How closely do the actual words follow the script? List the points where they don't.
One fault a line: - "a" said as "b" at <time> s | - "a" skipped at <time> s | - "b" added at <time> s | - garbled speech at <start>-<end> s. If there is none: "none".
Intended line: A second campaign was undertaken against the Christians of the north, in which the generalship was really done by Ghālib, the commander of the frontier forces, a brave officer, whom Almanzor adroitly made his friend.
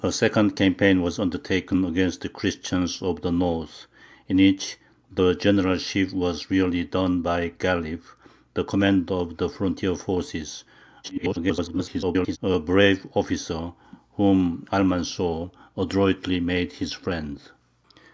- garbled speech at 11.0-12.4 s